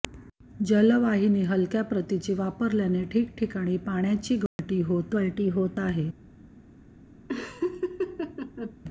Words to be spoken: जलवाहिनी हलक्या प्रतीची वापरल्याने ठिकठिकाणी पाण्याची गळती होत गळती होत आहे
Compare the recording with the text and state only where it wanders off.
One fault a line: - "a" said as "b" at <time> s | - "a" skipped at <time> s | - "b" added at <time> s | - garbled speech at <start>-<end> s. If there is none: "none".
none